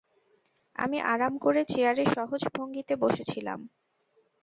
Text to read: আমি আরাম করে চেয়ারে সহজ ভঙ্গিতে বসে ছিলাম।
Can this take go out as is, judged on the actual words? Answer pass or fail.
pass